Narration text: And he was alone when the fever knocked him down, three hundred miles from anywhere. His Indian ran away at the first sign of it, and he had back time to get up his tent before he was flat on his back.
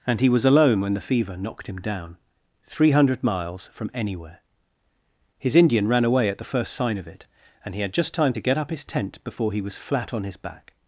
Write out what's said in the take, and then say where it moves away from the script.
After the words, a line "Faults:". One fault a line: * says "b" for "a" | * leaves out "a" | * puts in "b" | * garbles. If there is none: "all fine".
And he was alone when the fever knocked him down, three hundred miles from anywhere. His Indian ran away at the first sign of it, and he had just time to get up his tent before he was flat on his back.
Faults:
* says "just" for "back"